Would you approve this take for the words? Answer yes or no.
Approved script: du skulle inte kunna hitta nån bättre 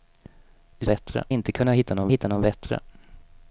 no